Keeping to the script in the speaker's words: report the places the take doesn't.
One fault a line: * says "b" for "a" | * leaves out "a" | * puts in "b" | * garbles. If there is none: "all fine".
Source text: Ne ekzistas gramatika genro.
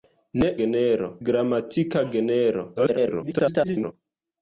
* says "genro" for "ekzistas"
* garbles